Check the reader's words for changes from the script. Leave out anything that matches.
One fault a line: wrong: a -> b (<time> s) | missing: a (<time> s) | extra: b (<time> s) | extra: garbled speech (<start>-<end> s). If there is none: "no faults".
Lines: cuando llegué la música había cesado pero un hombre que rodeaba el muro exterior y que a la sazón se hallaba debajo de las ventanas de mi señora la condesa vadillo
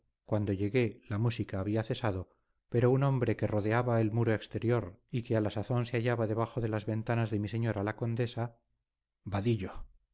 no faults